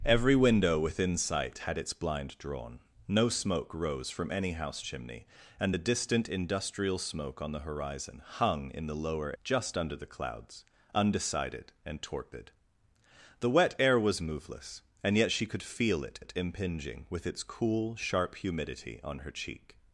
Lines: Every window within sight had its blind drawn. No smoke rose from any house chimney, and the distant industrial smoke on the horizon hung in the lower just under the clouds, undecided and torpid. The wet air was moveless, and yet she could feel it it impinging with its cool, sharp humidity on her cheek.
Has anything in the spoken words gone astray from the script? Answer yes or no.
no